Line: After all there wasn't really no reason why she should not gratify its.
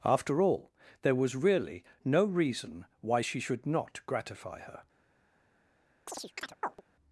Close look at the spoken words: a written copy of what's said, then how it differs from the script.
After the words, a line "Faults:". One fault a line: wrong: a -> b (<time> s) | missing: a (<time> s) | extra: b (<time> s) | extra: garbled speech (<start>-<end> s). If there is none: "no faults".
After all there was really no reason why she should not gratify her.
Faults:
wrong: wasn't -> was (1.2 s)
wrong: its -> her (4.6 s)